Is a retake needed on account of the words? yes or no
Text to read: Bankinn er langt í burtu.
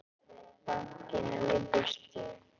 yes